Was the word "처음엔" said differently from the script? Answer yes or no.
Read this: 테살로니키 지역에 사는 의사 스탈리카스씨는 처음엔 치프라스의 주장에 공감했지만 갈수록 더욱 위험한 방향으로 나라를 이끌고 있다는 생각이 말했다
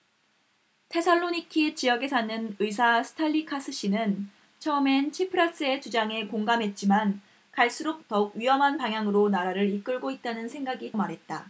no